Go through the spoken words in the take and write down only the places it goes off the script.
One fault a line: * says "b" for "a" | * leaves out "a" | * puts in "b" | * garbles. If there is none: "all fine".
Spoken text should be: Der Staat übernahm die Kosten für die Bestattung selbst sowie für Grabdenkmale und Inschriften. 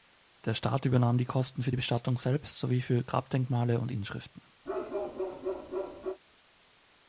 all fine